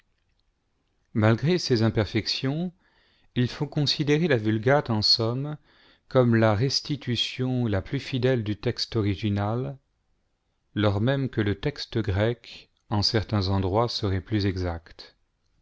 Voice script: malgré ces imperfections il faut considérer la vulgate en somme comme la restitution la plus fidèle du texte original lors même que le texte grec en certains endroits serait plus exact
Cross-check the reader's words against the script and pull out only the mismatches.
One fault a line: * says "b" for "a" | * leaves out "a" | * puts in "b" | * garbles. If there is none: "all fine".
all fine